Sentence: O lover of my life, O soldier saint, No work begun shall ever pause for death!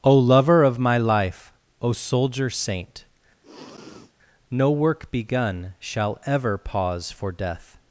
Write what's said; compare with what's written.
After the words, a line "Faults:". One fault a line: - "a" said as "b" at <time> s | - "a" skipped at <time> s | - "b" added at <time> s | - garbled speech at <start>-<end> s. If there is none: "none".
O lover of my life, O soldier saint, No work begun shall ever pause for death!
Faults:
none